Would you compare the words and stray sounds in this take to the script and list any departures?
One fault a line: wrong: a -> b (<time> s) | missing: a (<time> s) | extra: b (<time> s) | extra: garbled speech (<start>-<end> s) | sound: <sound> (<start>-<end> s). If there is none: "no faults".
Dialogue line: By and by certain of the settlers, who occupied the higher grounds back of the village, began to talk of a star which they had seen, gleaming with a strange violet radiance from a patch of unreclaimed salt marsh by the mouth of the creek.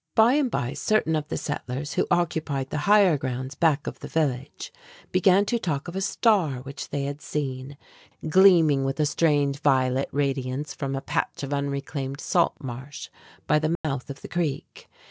sound: dropout (13.8-13.8 s)